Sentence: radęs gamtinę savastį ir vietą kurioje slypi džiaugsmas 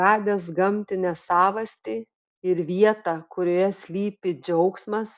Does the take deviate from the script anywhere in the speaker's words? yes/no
no